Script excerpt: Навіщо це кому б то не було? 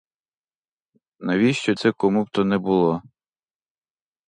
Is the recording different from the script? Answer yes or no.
no